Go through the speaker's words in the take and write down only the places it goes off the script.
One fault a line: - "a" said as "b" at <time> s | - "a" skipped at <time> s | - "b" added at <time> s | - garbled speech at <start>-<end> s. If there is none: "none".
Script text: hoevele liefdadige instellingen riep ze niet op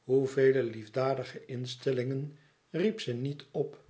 none